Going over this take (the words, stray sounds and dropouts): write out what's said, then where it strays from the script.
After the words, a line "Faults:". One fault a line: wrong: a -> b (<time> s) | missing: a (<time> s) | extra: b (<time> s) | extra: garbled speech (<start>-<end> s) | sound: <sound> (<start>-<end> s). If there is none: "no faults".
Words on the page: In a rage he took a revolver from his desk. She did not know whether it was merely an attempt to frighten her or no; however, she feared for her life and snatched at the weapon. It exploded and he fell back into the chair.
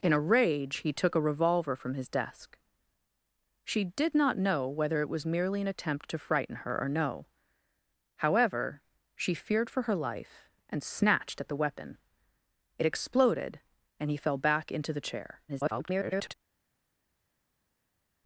In a rage he took a revolver from his desk. She did not know whether it was merely an attempt to frighten her or no; however, she feared for her life and snatched at the weapon. It exploded and he fell back into the chair. [garbled]
Faults:
extra: garbled speech (15.5-16.3 s)